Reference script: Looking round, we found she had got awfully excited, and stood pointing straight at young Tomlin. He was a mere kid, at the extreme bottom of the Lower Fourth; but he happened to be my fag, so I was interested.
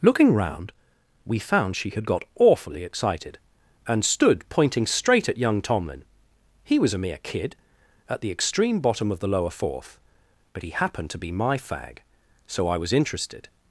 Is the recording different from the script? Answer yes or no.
no